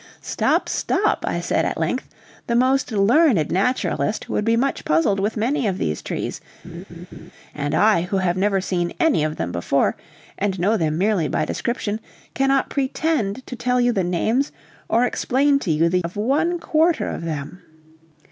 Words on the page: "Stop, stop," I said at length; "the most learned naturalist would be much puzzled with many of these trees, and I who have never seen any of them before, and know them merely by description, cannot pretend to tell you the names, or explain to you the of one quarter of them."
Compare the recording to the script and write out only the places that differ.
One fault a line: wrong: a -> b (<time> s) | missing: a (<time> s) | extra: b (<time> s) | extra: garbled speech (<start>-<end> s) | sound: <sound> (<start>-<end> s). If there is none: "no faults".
sound: laugh (6.6-7.3 s)